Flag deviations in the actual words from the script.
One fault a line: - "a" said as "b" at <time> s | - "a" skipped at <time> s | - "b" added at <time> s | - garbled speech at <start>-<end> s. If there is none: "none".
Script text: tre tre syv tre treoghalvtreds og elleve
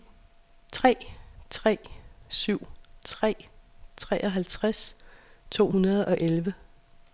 - "to hundrede" added at 5.5 s